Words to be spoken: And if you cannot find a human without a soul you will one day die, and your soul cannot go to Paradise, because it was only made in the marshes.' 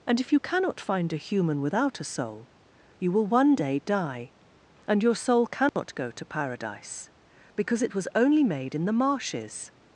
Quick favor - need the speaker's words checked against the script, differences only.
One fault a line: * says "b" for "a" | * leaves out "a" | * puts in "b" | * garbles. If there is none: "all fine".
all fine